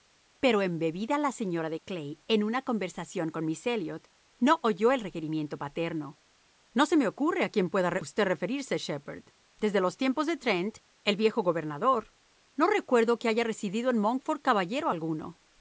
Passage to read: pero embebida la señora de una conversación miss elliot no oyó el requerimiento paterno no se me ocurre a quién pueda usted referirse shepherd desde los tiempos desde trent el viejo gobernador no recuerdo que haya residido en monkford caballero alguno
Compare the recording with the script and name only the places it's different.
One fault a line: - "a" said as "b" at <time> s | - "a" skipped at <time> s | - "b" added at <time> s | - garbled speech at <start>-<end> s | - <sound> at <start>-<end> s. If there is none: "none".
- "clay en" added at 1.8 s
- "con" added at 3.3 s
- "desde" said as "de" at 10.3 s